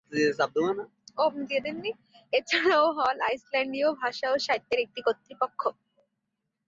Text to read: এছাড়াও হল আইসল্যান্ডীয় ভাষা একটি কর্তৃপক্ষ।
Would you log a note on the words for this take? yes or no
yes